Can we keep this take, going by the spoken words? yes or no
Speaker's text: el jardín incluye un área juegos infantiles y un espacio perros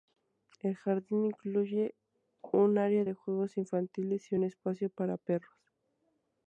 no